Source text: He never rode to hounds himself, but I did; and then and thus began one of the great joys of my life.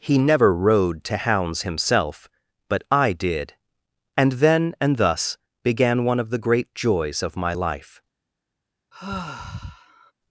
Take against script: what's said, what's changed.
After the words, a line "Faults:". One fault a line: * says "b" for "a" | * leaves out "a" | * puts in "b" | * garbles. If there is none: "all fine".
He never rode to hounds himself, but I did; and then and thus began one of the great joys of my life.
Faults:
all fine